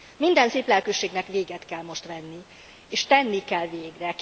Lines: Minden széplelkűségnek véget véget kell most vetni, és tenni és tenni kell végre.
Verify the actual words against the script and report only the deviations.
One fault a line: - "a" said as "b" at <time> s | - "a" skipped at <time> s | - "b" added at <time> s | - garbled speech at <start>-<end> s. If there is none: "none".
- "véget" skipped at 1.6 s
- "és tenni" skipped at 3.4 s